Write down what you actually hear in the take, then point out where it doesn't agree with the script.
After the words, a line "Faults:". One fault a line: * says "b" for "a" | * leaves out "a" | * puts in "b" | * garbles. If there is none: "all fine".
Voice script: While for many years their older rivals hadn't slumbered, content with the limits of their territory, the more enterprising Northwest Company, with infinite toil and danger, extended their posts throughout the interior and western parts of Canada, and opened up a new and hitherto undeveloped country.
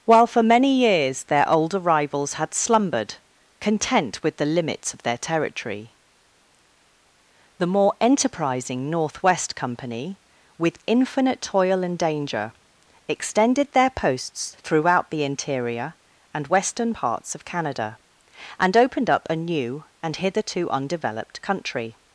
While for many years their older rivals had slumbered, content with the limits of their territory, the more enterprising Northwest Company, with infinite toil and danger, extended their posts throughout the interior and western parts of Canada, and opened up a new and hitherto undeveloped country.
Faults:
* says "had" for "hadn't"